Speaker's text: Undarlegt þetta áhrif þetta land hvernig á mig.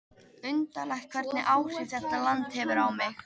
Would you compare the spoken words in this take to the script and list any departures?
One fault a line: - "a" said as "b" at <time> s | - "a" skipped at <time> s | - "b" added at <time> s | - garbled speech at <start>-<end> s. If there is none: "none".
- "þetta" said as "hvernig" at 1.2 s
- "hvernig" said as "hefur" at 2.6 s